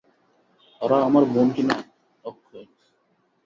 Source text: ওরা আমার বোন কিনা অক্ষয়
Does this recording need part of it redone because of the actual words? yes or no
no